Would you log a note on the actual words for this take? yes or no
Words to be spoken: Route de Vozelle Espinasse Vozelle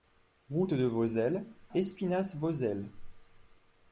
no